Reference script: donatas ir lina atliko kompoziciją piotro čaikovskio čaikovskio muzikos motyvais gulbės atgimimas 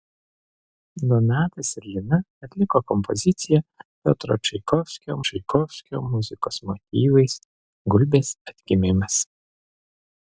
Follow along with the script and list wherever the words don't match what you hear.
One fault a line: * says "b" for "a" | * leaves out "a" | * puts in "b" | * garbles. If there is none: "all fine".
all fine